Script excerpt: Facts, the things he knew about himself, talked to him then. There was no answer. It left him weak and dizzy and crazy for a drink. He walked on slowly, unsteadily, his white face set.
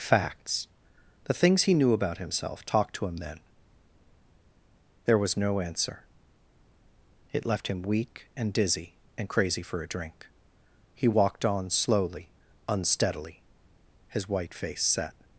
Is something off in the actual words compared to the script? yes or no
no